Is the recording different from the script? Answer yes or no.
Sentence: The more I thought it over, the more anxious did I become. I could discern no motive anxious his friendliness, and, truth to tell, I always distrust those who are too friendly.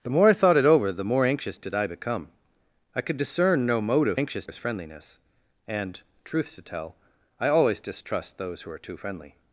no